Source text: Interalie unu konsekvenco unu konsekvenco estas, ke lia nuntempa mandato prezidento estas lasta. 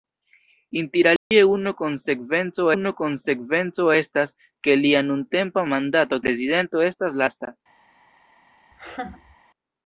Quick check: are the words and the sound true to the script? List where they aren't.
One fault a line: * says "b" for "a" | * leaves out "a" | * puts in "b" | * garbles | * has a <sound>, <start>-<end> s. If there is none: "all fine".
* has a dropout, 1.2-1.3 s
* has a laugh, 8.7-9.4 s